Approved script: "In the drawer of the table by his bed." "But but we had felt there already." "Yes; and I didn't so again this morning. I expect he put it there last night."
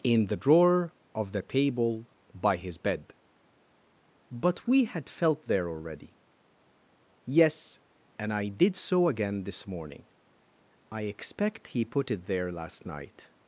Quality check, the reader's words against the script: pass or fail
fail